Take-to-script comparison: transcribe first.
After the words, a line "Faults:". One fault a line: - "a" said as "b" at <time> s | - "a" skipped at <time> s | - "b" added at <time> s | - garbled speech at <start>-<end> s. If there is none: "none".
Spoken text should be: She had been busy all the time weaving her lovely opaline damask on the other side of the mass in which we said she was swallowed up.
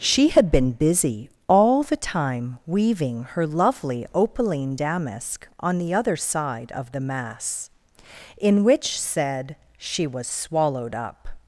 She had been busy all the time weaving her lovely opaline damask on the other side of the mass in which said she was swallowed up.
Faults:
- "we" skipped at 9.0 s